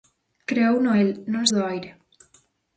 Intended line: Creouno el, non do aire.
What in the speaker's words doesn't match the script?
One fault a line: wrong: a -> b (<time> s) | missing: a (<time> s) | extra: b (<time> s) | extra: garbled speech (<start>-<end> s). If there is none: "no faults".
no faults